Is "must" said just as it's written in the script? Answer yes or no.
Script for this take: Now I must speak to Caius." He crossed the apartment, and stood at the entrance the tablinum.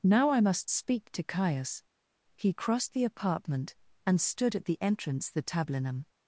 yes